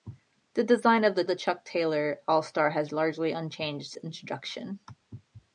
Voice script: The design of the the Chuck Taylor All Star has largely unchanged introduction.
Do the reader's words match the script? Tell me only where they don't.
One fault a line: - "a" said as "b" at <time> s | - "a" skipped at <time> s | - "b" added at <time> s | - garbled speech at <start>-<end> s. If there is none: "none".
none